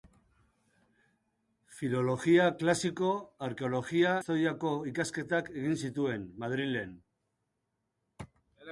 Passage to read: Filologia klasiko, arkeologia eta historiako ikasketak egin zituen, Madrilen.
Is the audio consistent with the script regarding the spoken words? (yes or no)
no